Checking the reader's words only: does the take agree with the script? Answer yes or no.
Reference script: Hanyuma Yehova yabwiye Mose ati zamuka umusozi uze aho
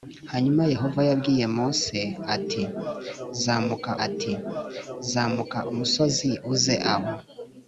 no